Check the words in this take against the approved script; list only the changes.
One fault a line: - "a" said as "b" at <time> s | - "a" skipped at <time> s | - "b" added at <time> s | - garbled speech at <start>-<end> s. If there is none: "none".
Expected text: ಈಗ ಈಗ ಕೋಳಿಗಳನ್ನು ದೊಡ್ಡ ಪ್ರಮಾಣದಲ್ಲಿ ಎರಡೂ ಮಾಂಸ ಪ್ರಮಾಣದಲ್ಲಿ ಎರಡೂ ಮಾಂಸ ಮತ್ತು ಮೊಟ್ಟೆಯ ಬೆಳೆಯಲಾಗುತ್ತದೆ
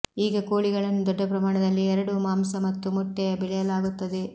- "ಈಗ" skipped at 0.4 s
- "ಪ್ರಮಾಣದಲ್ಲಿ ಎರಡೂ ಮಾಂಸ" skipped at 2.5 s